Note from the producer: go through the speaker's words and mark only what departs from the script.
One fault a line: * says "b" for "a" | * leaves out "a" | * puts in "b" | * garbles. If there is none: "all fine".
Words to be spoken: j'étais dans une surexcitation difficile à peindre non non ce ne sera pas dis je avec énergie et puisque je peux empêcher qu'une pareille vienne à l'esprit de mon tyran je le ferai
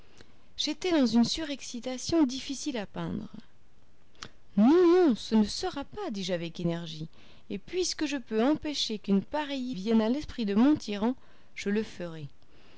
all fine